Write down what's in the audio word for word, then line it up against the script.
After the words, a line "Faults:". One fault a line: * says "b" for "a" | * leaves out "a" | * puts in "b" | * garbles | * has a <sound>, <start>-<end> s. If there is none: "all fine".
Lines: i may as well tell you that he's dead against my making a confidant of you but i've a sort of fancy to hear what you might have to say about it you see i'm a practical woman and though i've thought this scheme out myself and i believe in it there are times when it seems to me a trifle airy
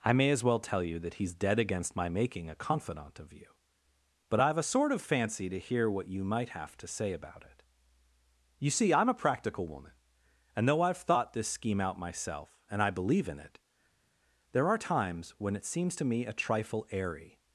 i may as well tell you that he's dead against my making a confidant of you but i've a sort of fancy to hear what you might have to say about it you see i'm a practical woman and though i've thought this scheme out myself and i believe in it there are times when it seems to me a trifle airy
Faults:
all fine